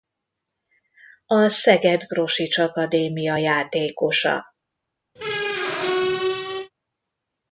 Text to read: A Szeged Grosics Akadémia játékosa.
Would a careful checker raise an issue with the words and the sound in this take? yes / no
yes